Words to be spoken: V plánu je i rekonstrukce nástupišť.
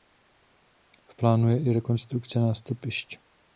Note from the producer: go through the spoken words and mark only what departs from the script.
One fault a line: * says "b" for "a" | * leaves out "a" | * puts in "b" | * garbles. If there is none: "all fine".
all fine